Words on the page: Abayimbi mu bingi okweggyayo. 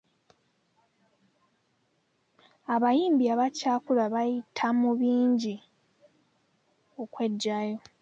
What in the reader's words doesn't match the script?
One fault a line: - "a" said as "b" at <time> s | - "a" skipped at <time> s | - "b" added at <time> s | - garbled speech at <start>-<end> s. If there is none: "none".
- "abakyakula bayita" added at 3.3 s